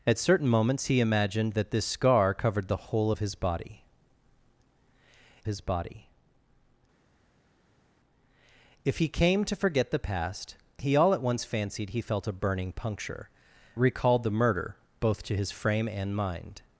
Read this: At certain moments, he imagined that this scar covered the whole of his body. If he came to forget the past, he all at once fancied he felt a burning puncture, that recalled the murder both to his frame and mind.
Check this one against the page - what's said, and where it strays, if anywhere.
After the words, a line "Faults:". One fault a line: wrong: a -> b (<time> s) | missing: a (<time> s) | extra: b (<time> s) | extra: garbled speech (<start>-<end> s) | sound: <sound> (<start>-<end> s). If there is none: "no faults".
At certain moments, he imagined that this scar covered the whole of his body his body. If he came to forget the past, he all at once fancied he felt a burning puncture, recalled the murder both to his frame and mind.
Faults:
extra: his body (5.5 s)
missing: that (13.3 s)